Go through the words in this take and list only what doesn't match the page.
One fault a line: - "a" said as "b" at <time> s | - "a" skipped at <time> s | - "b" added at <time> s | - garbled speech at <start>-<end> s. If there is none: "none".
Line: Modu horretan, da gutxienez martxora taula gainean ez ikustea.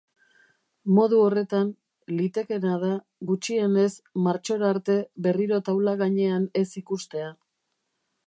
- "litekeena" added at 2.2 s
- "arte berriro" added at 4.7 s